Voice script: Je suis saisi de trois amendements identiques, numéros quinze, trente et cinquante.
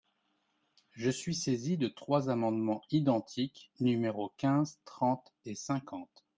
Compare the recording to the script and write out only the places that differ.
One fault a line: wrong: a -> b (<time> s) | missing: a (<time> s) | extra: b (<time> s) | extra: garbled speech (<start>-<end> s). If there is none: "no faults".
no faults